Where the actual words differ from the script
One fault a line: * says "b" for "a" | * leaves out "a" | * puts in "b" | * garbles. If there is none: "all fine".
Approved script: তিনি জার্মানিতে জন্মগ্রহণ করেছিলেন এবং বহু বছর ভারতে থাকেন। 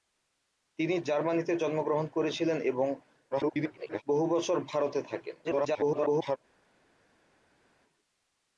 * garbles
* garbles